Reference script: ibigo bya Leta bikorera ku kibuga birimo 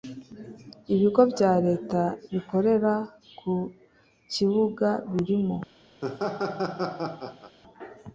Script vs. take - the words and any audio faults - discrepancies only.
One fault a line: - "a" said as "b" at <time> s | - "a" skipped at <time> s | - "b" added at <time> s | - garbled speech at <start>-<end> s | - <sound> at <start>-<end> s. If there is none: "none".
- laugh at 6.0-7.6 s